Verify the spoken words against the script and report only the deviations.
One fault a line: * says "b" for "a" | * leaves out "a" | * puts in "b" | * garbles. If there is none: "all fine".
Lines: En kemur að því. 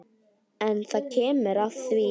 * puts in "það"